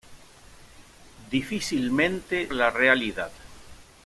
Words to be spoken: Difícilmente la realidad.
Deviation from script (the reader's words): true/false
false